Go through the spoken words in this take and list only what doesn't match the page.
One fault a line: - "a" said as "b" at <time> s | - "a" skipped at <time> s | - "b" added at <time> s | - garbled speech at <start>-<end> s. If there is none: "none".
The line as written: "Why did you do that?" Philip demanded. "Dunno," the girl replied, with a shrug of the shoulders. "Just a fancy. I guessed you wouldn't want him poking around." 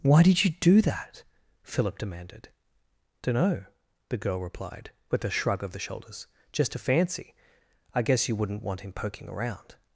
- "guessed" said as "guess" at 8.0 s